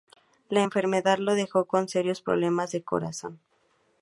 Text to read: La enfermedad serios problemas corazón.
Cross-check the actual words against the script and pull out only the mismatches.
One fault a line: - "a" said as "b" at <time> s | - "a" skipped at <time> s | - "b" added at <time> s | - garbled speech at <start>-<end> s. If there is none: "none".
- "lo dejó con" added at 1.2 s
- "de" added at 2.7 s